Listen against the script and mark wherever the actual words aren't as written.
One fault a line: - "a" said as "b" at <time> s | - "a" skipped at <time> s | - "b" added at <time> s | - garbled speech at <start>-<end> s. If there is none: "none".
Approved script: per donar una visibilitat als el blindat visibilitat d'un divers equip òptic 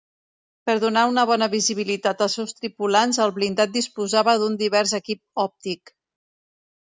- "bona" added at 1.3 s
- "seus tripulants" added at 2.4 s
- "visibilitat" said as "disposava" at 3.8 s